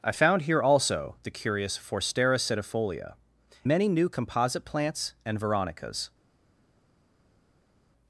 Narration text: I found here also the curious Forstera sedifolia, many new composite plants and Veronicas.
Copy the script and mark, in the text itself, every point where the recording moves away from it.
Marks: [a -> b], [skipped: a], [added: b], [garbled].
I found here also the curious Forstera sedifolia, many new composite plants and Veronicas.